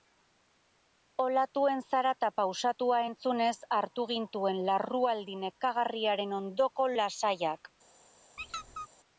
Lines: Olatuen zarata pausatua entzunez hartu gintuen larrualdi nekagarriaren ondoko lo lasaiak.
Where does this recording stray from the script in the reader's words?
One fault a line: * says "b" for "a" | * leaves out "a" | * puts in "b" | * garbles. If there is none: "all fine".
* leaves out "lo"